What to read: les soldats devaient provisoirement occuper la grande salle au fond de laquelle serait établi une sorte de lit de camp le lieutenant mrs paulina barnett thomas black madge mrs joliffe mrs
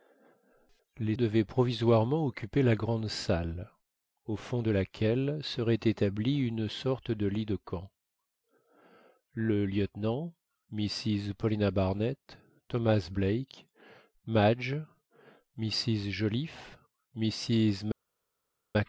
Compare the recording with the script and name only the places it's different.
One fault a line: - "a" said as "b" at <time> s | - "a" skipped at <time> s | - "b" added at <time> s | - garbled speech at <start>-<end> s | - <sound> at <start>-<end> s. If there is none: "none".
- "soldats" skipped at 1.1 s